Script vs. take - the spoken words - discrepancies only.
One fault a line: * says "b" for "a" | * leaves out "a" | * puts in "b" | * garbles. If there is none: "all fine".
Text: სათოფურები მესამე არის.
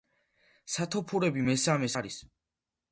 all fine